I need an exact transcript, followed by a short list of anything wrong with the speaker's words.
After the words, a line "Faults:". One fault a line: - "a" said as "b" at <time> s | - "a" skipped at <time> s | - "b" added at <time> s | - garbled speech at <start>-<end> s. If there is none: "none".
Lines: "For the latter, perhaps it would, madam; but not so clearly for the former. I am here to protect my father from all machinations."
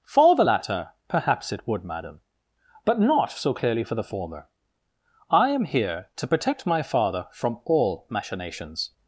"For the latter, perhaps it would, madam; but not so clearly for the former. I am here to protect my father from all machinations."
Faults:
none